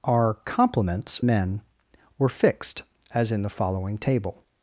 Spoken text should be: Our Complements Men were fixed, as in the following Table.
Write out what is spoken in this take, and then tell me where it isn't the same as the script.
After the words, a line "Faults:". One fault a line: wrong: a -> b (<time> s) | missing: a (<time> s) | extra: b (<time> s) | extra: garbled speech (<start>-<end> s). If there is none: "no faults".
Our Complements Men were fixed, as in the following Table.
Faults:
no faults